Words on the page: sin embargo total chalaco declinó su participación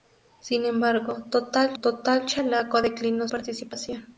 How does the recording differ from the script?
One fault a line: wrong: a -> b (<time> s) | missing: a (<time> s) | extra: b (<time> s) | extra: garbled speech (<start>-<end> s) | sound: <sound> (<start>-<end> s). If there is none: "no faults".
extra: total (1.8 s)
missing: su (3.3 s)